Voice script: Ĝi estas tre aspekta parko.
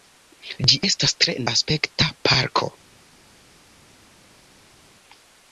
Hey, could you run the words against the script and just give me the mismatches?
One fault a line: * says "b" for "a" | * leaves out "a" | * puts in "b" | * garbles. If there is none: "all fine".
all fine